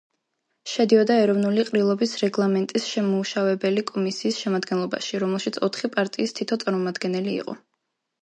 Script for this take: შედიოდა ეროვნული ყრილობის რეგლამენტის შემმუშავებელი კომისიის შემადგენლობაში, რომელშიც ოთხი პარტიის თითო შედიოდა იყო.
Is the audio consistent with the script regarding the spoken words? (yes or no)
no